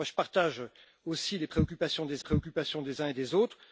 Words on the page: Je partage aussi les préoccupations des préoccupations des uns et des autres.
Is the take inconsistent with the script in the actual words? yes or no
no